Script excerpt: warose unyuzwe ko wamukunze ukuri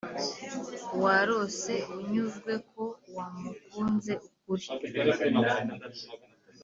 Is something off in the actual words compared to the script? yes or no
no